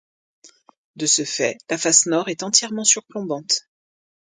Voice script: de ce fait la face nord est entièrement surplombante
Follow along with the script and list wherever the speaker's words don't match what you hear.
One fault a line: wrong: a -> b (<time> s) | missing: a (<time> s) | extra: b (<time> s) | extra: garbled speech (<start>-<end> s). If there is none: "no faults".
no faults